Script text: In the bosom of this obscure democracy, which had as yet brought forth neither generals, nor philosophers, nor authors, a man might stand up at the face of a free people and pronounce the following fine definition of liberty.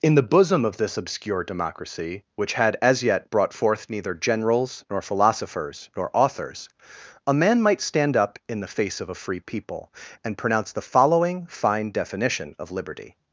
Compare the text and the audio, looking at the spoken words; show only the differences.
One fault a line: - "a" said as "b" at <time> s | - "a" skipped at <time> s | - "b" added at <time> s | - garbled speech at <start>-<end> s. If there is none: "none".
- "at" said as "in" at 8.5 s